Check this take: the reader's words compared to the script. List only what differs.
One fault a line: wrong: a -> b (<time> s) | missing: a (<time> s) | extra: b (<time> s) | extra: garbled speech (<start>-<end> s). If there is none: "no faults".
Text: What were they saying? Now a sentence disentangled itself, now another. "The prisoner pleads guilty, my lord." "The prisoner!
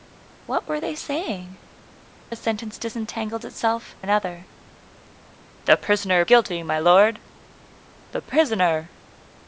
missing: Now (1.6 s)
missing: now (3.9 s)
missing: pleads (6.2 s)